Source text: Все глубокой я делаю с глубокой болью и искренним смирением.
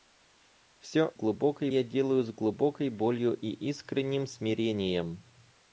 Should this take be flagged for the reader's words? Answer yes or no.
no